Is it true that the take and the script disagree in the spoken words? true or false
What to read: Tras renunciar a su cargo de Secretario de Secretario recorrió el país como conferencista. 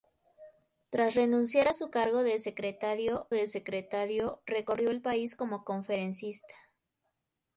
false